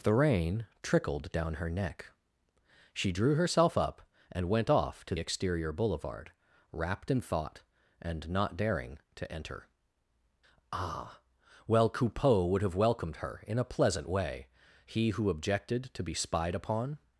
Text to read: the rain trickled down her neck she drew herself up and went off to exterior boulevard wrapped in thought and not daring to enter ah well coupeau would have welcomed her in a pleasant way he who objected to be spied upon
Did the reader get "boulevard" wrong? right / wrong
right